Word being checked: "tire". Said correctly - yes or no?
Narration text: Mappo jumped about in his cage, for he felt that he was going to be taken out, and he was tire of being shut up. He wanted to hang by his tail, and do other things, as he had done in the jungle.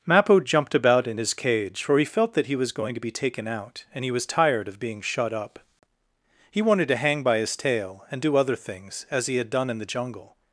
no